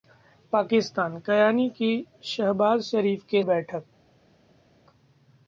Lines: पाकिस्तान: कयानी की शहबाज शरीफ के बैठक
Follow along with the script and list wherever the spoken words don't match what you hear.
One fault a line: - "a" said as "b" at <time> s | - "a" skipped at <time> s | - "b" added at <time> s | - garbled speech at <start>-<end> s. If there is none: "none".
none